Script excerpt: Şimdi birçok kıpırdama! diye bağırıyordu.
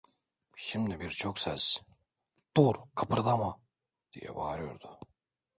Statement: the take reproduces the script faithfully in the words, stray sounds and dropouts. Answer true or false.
false